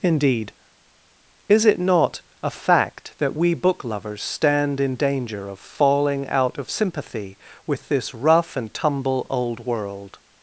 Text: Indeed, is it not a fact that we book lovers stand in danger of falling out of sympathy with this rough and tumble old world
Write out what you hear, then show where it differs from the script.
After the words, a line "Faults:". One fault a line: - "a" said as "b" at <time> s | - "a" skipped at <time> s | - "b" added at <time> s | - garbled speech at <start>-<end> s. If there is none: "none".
Indeed, is it not a fact that we book lovers stand in danger of falling out of sympathy with this rough and tumble old world
Faults:
none